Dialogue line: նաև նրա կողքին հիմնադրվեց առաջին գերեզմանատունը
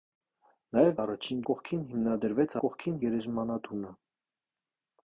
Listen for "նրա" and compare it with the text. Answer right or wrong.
wrong